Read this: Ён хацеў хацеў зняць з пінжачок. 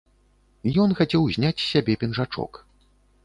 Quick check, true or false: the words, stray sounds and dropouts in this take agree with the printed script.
false